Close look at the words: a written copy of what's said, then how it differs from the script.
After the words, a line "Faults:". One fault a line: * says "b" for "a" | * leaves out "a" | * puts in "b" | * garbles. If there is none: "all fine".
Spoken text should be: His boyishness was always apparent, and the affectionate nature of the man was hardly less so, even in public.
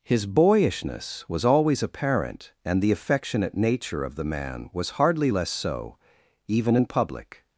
His boyishness was always apparent, and the affectionate nature of the man was hardly less so, even in public.
Faults:
all fine